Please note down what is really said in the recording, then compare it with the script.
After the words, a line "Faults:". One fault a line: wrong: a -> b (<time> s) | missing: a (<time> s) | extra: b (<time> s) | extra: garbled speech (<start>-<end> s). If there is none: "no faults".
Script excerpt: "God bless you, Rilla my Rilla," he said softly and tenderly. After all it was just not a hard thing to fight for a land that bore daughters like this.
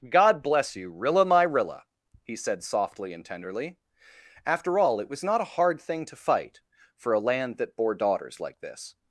"God bless you, Rilla my Rilla," he said softly and tenderly. After all it was not a hard thing to fight for a land that bore daughters like this.
Faults:
missing: just (5.2 s)